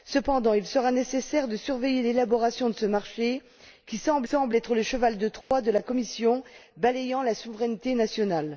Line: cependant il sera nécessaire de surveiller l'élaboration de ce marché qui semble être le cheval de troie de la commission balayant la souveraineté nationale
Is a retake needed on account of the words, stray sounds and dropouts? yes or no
yes